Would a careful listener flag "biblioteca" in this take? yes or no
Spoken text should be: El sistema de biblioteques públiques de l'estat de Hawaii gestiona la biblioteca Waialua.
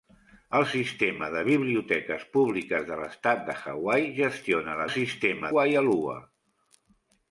yes